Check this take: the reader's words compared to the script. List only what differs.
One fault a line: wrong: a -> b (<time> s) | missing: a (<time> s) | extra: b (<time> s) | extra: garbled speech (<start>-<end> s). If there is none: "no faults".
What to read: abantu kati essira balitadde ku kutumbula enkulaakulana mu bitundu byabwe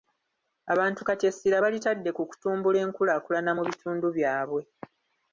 no faults